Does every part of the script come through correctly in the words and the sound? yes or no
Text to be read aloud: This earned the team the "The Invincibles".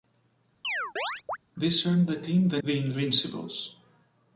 no